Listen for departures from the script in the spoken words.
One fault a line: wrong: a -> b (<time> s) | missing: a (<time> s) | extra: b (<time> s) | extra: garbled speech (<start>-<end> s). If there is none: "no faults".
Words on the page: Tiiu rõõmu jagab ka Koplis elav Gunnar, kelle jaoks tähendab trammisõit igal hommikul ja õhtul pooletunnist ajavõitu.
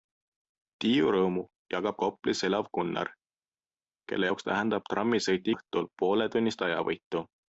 missing: ka (2.0 s)
missing: igal hommikul ja (5.5 s)